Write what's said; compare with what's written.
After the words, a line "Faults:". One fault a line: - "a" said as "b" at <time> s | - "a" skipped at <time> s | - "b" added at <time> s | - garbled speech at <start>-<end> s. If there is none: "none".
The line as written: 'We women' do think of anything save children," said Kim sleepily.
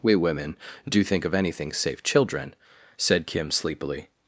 'We women' do think of anything save children," said Kim sleepily.
Faults:
none